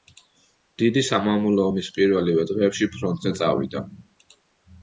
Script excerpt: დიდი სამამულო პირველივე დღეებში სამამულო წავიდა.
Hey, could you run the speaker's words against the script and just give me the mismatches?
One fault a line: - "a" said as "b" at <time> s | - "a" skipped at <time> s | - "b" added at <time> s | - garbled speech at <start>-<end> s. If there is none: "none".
- "ომის" added at 1.7 s
- "სამამულო" said as "ფრონტზე" at 3.0 s